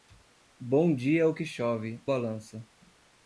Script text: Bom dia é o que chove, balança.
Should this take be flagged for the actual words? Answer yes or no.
no